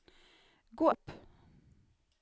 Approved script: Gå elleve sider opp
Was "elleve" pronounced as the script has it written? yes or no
no